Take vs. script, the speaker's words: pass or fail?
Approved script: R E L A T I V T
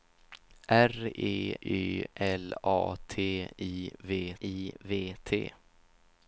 fail